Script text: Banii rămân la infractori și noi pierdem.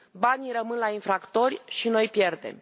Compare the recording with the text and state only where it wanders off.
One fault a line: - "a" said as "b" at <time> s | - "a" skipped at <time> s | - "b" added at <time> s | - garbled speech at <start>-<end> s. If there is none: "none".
none